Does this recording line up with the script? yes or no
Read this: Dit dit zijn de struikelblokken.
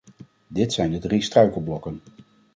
no